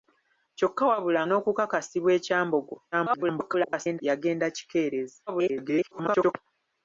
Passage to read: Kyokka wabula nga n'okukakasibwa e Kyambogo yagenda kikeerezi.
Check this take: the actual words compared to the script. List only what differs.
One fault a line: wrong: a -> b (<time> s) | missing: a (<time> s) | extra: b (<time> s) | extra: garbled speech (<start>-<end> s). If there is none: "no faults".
missing: nga (1.2 s)
extra: garbled speech (2.9-4.0 s)
extra: garbled speech (5.3-6.3 s)